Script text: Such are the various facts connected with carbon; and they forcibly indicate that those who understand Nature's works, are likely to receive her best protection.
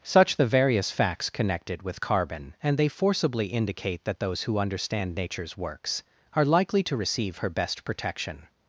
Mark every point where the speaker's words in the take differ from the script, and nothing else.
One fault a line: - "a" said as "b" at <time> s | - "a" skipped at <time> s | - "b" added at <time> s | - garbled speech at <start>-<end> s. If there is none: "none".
- "are" skipped at 0.4 s